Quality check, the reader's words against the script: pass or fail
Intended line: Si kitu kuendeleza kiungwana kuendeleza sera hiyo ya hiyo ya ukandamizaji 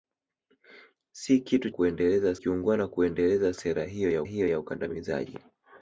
pass